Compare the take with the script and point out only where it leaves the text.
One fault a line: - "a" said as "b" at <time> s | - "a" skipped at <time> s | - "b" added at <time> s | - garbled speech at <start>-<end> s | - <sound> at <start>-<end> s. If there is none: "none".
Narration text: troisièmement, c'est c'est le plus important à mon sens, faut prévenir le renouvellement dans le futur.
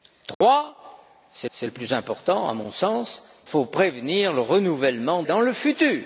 - dropout at 0.3-0.4 s